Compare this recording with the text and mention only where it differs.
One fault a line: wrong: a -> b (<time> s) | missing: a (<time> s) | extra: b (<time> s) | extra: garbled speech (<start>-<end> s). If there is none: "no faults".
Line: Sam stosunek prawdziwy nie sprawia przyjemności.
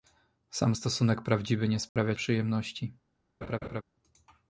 no faults